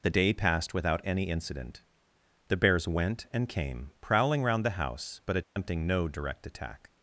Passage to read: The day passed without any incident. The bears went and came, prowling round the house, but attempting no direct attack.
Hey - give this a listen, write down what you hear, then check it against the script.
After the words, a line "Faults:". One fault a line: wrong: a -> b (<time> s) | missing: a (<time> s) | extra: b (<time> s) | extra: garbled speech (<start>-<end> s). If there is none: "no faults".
The day passed without any incident. The bears went and came, prowling round the house, but attempting no direct attack.
Faults:
no faults